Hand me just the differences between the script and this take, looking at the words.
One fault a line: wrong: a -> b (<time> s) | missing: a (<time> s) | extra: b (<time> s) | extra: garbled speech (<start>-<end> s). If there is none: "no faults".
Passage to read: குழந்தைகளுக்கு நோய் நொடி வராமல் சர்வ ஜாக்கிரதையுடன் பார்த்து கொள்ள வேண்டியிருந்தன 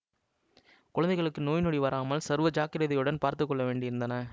no faults